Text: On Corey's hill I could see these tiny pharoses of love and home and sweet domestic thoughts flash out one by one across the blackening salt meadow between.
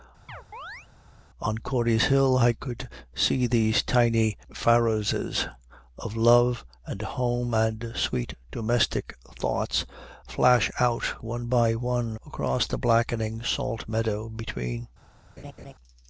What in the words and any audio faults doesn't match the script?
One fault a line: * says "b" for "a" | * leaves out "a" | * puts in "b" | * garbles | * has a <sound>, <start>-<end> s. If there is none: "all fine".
* has a chirp, 0.3-0.9 s
* has a laugh, 15.4-15.7 s